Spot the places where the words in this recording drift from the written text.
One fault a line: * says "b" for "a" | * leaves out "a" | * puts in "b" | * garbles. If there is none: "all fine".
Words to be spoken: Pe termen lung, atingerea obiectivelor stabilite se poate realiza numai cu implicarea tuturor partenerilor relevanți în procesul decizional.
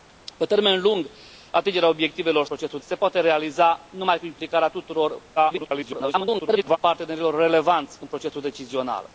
* says "procesul" for "stabilite"
* garbles